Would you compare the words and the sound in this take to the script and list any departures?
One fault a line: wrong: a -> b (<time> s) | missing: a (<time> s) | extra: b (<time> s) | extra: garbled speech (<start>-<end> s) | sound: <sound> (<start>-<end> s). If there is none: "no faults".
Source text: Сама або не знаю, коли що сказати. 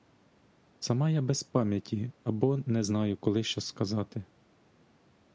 extra: я без пам'яті (1.1 s)